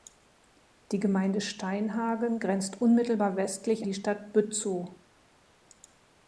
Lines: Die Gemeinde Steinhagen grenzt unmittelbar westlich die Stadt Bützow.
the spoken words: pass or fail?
pass